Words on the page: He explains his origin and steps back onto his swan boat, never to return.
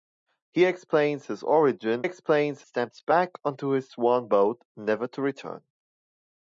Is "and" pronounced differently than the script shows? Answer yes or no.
yes